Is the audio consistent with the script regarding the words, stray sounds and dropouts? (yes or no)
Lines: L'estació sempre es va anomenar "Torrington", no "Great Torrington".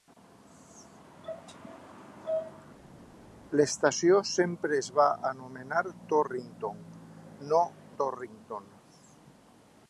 no